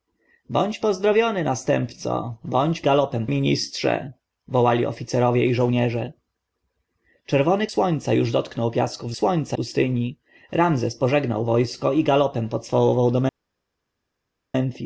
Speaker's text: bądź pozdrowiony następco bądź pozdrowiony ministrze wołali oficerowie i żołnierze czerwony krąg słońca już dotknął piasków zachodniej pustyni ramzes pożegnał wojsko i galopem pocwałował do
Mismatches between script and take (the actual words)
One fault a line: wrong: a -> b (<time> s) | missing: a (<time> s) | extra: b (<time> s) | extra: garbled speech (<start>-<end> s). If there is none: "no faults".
wrong: pozdrowiony -> galopem (2.8 s)
missing: krąg (7.7 s)
wrong: zachodniej -> słońca (9.1 s)